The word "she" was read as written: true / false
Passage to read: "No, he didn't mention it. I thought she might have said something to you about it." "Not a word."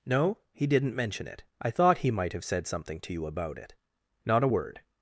false